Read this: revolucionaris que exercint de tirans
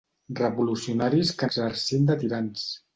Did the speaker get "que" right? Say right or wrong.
right